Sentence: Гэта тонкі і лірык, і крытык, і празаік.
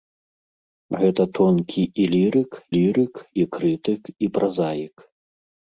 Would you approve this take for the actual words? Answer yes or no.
no